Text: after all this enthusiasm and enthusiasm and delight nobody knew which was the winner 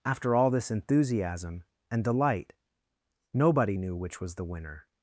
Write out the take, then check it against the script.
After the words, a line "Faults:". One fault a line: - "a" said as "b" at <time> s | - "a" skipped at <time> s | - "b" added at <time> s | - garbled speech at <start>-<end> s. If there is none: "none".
after all this enthusiasm and delight nobody knew which was the winner
Faults:
- "enthusiasm and" skipped at 2.0 s